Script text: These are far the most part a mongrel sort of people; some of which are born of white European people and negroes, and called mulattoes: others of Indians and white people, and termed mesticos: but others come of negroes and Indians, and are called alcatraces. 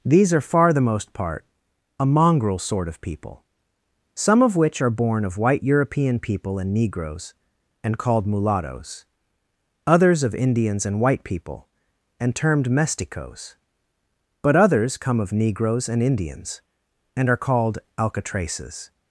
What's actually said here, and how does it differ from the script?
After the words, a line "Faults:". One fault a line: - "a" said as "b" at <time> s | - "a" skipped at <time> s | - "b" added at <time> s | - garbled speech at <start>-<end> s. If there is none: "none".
These are far the most part a mongrel sort of people; some of which are born of white European people and negroes, and called mulattoes: others of Indians and white people, and termed mesticos: but others come of negroes and Indians, and are called alcatraces.
Faults:
none